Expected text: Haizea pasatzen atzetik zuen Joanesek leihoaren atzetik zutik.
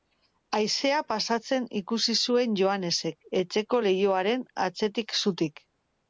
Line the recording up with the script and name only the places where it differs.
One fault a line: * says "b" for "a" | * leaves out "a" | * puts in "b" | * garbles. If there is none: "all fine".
* says "ikusi" for "atzetik"
* puts in "etxeko"